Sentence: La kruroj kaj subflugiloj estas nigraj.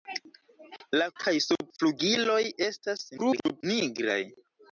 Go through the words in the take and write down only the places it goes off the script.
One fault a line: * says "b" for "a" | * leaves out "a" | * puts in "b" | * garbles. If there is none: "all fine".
* leaves out "kruroj"
* garbles